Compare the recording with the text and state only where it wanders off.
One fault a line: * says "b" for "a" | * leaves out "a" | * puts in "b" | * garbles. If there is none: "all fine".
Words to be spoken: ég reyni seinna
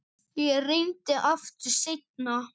* puts in "aftur"